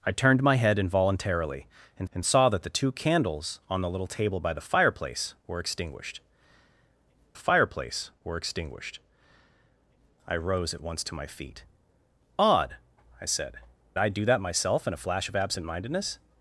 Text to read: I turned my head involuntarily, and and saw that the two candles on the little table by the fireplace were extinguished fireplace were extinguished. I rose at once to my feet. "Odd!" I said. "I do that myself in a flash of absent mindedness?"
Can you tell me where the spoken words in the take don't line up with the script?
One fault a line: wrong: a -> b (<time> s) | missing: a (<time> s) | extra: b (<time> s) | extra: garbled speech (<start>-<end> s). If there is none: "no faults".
no faults